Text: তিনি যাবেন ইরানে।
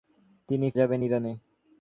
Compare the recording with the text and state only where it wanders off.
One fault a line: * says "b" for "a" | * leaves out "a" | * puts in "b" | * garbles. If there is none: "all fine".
all fine